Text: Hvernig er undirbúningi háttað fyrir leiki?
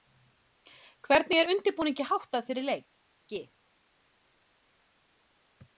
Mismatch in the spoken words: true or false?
false